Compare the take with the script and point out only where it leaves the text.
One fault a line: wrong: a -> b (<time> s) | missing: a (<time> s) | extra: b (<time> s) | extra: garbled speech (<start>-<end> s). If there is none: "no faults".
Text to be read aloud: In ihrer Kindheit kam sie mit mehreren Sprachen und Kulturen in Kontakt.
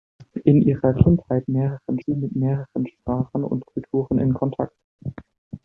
wrong: kam -> mehreren (1.5 s)